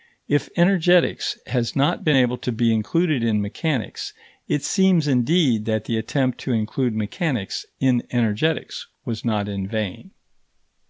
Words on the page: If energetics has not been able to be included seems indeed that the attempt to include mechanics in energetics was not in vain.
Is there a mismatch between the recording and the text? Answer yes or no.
yes